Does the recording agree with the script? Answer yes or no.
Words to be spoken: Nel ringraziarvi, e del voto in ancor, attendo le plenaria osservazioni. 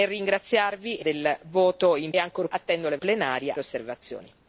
yes